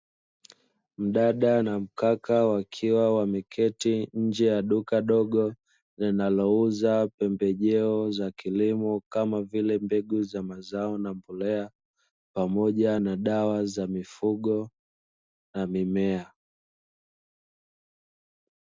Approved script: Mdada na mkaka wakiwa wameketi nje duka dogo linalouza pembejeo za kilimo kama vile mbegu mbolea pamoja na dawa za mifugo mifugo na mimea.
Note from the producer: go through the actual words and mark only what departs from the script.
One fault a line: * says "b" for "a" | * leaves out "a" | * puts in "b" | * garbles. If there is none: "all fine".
* puts in "ya"
* puts in "za mazao na"
* leaves out "mifugo"